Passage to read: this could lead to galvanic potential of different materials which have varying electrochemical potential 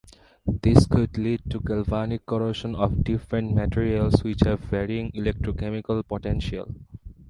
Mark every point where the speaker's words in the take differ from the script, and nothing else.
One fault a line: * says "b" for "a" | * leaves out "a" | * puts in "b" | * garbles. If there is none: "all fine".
* says "corrosion" for "potential"